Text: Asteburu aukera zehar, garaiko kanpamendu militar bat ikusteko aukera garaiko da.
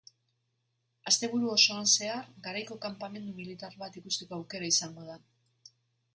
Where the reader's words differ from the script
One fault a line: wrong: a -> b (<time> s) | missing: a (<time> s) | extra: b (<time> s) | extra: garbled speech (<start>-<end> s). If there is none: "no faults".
wrong: aukera -> osoan (1.6 s)
wrong: garaiko -> izango (4.8 s)